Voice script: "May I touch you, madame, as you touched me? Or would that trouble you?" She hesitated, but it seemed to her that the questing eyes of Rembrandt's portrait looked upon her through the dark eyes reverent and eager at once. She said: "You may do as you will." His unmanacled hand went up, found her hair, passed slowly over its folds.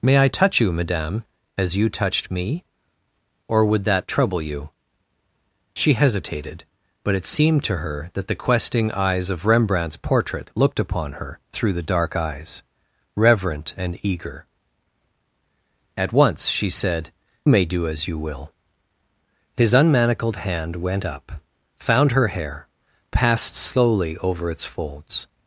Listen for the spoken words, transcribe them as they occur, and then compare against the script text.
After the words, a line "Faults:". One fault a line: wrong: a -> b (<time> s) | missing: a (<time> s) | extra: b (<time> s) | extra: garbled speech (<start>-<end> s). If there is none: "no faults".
"May I touch you, madame, as you touched me? Or would that trouble you?" She hesitated, but it seemed to her that the questing eyes of Rembrandt's portrait looked upon her through the dark eyes reverent and eager at once. She said: "May do as you will." His unmanacled hand went up, found her hair, passed slowly over its folds.
Faults:
missing: You (17.1 s)